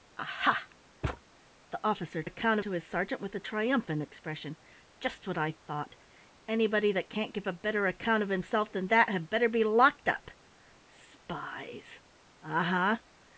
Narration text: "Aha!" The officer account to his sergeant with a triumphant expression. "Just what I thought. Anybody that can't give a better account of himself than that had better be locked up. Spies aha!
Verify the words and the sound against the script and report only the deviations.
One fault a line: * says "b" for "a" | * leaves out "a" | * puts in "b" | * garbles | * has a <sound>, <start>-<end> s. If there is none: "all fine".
* has a thud, 1.0-1.2 s